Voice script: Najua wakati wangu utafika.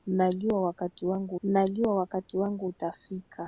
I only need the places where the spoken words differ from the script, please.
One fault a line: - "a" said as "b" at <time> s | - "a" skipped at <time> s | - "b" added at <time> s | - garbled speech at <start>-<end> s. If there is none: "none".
- "najua wakati wangu" added at 1.4 s